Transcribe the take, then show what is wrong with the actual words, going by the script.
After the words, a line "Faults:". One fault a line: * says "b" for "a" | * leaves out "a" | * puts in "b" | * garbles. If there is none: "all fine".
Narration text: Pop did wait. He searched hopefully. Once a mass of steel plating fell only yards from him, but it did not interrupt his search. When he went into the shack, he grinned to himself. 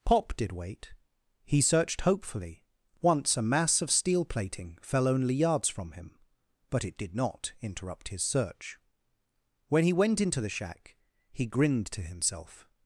Pop did wait. He searched hopefully. Once a mass of steel plating fell only yards from him, but it did not interrupt his search. When he went into the shack, he grinned to himself.
Faults:
all fine